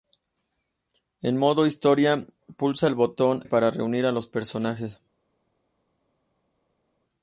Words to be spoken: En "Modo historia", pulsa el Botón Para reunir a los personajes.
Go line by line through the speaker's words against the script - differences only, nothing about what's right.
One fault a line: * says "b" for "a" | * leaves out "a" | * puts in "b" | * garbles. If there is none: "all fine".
all fine